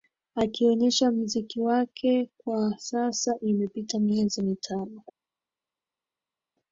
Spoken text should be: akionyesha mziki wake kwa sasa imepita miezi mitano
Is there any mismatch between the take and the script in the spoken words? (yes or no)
no